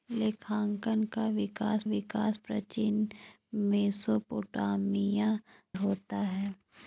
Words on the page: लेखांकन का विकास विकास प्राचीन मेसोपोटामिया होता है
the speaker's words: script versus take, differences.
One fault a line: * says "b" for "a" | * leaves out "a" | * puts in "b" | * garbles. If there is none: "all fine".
all fine